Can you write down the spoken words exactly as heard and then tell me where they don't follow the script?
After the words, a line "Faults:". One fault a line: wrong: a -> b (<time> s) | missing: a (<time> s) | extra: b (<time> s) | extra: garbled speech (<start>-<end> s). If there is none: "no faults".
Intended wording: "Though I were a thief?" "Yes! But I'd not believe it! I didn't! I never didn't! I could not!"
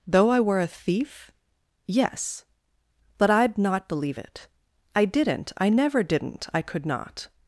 "Though I were a thief?" "Yes! But I'd not believe it! I didn't! I never didn't! I could not!"
Faults:
no faults